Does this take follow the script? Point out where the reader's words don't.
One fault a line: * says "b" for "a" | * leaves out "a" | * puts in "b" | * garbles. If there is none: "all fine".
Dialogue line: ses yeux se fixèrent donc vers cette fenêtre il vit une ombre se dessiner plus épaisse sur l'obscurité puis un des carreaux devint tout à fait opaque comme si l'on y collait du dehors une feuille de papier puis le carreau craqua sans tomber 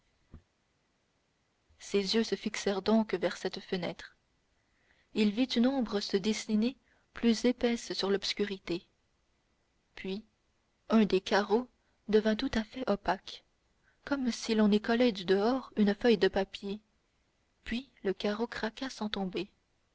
all fine